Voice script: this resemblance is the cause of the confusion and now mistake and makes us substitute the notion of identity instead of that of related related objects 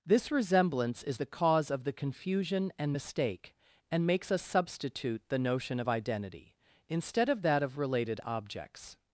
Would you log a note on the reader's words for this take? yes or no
yes